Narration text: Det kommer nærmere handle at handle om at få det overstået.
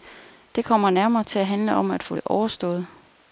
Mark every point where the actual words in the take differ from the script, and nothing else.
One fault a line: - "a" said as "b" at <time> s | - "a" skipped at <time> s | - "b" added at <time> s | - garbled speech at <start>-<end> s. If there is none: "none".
- "handle" said as "til" at 1.2 s